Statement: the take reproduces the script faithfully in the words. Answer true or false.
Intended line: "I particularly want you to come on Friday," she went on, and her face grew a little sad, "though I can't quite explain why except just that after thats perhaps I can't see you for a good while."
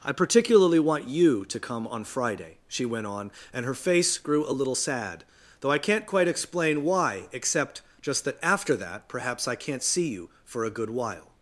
false